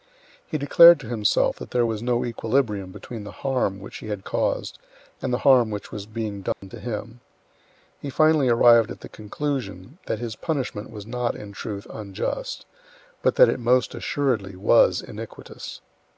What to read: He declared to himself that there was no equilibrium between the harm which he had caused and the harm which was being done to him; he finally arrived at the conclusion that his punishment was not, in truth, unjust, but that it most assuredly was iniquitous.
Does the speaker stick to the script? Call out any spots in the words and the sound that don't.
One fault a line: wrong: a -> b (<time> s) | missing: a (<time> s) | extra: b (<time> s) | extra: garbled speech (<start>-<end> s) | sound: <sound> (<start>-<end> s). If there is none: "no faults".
sound: dropout (6.5-6.6 s)